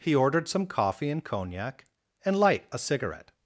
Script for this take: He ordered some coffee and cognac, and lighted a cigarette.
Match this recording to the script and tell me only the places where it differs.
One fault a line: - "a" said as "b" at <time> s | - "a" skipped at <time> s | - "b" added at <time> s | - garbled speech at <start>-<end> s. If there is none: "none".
- "lighted" said as "light" at 2.4 s